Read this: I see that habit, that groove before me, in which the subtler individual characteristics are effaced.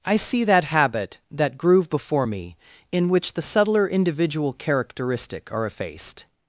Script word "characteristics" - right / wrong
wrong